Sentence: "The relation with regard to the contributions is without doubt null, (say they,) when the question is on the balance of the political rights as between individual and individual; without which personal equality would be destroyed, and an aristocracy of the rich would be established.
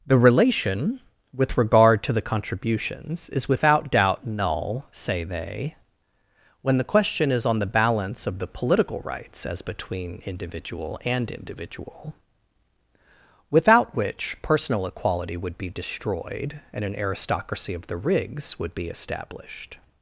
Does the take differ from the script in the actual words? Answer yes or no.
yes